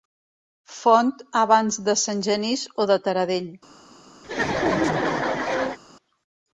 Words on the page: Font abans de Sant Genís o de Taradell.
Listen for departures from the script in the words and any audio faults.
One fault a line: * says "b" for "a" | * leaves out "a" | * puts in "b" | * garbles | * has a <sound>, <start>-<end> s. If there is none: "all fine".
* has a laugh, 4.2-5.8 s